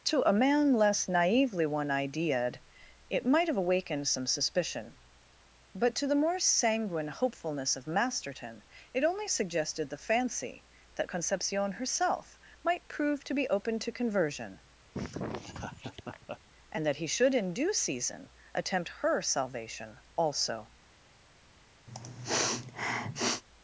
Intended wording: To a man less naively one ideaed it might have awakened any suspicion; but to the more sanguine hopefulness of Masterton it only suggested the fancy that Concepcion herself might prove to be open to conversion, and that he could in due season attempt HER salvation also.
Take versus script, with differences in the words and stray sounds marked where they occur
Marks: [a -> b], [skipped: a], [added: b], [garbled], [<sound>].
To a man less naively one ideaed it might have awakened [any -> some] suspicion; but to the more sanguine hopefulness of Masterton it only suggested the fancy that Concepcion herself might prove to be open to conversion, [laugh] and that he [could -> should] in due season attempt HER salvation also. [sniff]